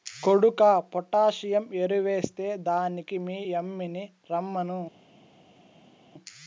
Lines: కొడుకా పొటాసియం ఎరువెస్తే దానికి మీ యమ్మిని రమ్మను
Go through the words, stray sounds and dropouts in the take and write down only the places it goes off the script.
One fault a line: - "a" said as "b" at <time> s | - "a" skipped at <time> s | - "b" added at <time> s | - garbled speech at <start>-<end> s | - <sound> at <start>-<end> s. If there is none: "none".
none